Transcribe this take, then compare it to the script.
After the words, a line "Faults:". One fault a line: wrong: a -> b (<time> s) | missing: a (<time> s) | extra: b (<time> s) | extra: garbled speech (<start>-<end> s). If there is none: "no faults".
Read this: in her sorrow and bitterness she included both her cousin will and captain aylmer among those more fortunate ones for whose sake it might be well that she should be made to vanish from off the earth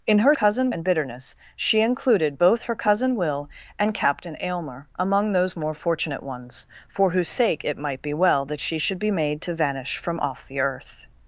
in her cousin and bitterness she included both her cousin will and captain aylmer among those more fortunate ones for whose sake it might be well that she should be made to vanish from off the earth
Faults:
wrong: sorrow -> cousin (0.3 s)